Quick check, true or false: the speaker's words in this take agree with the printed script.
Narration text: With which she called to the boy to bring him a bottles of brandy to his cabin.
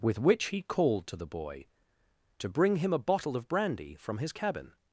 false